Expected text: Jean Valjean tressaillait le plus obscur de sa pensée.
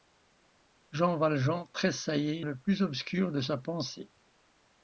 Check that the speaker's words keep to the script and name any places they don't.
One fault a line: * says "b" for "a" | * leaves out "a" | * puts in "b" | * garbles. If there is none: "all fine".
all fine